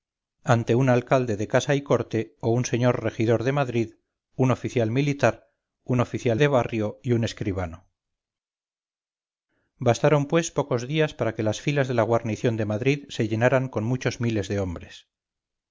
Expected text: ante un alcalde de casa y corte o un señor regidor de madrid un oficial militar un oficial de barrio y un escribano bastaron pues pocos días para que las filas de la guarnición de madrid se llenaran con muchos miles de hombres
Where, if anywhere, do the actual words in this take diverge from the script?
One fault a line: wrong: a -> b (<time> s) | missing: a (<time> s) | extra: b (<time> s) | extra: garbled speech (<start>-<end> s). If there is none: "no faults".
no faults